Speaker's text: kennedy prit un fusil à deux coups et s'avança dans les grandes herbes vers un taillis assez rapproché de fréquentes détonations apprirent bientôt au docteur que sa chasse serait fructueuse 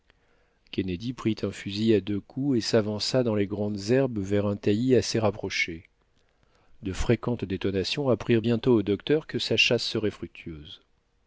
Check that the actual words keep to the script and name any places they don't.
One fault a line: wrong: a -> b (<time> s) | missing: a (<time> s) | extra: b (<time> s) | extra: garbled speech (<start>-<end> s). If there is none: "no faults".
no faults